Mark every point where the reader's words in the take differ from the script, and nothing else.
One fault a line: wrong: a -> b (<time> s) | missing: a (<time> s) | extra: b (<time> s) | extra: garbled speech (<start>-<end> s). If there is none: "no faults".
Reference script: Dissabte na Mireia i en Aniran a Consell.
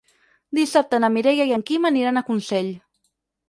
extra: Quim (1.7 s)